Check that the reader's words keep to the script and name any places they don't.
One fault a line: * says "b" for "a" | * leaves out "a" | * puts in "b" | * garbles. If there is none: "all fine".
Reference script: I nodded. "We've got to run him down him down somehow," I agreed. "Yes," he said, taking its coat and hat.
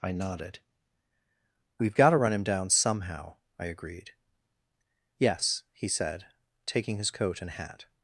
* leaves out "him down"
* says "his" for "its"